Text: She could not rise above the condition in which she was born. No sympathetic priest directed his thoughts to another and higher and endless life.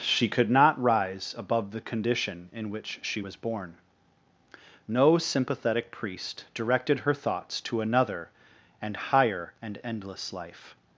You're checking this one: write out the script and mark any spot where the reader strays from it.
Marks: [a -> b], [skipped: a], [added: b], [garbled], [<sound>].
She could not rise above the condition in which she was born. No sympathetic priest directed [his -> her] thoughts to another and higher and endless life.